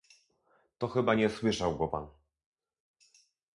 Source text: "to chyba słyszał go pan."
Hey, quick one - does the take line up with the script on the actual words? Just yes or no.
no